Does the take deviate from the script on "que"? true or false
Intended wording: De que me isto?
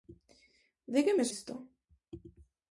false